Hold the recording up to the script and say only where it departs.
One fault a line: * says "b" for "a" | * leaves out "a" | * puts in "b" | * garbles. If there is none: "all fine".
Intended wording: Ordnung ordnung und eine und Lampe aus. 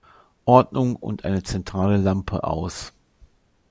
* leaves out "ordnung"
* says "zentrale" for "und"